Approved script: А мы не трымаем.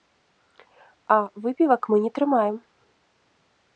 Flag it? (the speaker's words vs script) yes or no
yes